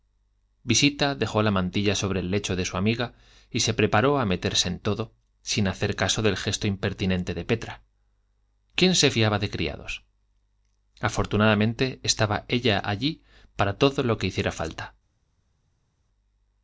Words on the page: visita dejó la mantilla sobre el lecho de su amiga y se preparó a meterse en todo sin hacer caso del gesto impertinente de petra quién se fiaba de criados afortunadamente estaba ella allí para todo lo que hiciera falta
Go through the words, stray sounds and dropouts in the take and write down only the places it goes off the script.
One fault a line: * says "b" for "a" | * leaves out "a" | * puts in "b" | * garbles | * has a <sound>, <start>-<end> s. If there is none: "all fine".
all fine